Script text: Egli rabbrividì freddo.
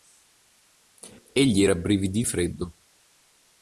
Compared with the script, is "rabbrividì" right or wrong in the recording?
right